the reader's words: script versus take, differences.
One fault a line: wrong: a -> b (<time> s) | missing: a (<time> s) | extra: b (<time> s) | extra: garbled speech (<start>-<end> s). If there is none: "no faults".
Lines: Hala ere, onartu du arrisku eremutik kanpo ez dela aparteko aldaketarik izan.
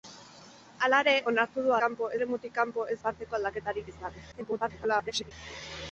wrong: arrisku -> kanpo (1.8 s)
missing: dela (3.0 s)
extra: garbled speech (4.3-5.3 s)